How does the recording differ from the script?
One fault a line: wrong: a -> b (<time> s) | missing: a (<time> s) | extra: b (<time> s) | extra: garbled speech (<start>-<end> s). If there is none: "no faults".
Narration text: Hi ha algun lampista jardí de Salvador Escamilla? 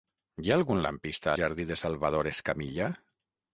no faults